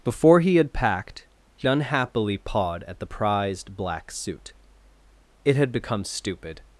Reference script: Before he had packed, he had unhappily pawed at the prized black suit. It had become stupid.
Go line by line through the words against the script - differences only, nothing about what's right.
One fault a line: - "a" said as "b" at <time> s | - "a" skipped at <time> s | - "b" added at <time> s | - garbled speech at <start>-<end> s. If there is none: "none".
- "had" skipped at 1.7 s